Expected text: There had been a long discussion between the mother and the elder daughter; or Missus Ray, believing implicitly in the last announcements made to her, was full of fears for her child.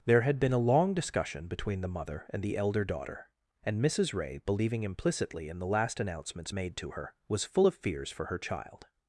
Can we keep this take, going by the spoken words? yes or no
no